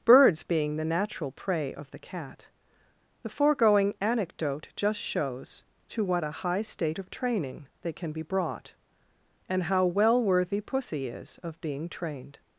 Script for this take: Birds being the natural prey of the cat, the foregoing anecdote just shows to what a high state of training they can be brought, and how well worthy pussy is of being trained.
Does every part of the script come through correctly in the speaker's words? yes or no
yes